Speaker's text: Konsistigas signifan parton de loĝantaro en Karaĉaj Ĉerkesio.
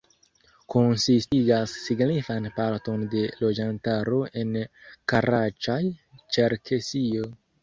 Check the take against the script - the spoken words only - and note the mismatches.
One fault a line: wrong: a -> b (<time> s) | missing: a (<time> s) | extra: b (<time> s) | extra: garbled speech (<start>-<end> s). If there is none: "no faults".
no faults